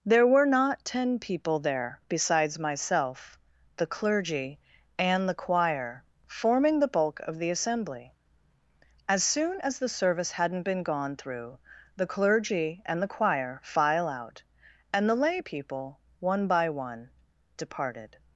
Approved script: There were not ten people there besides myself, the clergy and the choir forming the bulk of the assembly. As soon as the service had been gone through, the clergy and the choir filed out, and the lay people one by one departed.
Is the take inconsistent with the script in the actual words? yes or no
yes